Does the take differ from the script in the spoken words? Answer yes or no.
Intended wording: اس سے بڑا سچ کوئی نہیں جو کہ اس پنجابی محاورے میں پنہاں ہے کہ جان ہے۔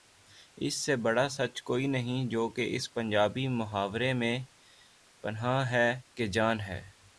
no